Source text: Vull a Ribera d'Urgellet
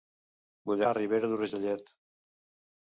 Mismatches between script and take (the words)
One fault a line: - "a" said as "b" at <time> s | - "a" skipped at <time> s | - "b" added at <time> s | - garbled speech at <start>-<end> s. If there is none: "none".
none